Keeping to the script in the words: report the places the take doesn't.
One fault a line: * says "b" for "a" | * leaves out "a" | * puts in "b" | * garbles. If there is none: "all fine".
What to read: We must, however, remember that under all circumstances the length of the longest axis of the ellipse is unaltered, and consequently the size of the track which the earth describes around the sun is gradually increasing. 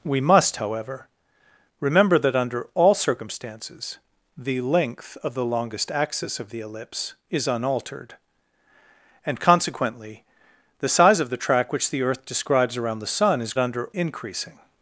* says "under" for "gradually"